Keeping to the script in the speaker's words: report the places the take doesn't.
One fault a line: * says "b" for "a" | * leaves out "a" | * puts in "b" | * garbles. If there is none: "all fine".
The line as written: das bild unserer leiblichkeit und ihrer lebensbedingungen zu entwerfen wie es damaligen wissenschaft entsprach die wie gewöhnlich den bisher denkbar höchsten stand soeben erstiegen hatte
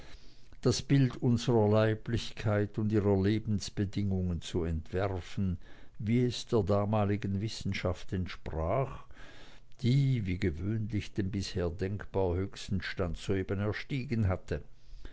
* puts in "der"